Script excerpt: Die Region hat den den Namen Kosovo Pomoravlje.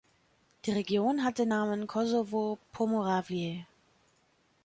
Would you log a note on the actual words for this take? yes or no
yes